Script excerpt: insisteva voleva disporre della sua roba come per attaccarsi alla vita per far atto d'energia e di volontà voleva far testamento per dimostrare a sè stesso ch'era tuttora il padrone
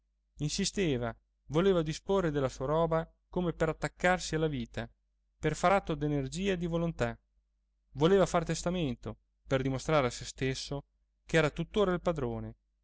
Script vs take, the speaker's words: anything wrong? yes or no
no